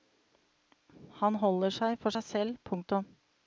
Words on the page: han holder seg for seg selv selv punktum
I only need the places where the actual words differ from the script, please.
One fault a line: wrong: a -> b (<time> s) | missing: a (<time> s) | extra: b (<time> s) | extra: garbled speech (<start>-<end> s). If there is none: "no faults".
missing: selv (2.6 s)